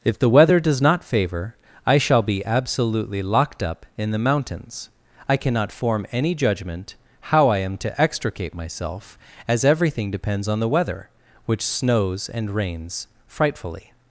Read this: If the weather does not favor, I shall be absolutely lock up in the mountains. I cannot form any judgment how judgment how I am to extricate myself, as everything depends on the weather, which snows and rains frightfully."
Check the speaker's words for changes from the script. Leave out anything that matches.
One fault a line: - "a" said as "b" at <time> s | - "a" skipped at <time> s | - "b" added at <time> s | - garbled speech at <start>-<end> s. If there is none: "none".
- "lock" said as "locked" at 3.2 s
- "judgment how" skipped at 7.5 s